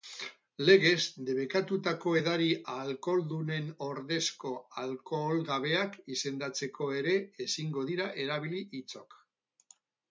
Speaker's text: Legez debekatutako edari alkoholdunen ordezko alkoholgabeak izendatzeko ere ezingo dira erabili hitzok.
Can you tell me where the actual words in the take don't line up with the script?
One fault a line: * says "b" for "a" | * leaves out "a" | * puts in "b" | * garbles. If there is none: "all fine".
all fine